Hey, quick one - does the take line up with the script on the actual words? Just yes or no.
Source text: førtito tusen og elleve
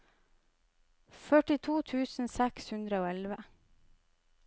no